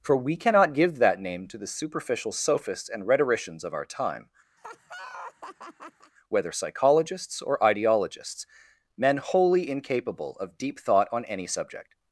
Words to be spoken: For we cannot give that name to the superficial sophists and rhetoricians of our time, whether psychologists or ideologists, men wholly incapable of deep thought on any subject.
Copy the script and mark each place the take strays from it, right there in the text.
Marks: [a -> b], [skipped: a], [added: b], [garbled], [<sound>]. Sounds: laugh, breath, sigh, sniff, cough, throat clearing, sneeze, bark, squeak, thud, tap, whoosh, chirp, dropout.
For we cannot give that name to the superficial sophists and rhetoricians of our time, [laugh] whether psychologists or ideologists, men wholly incapable of deep thought on any subject.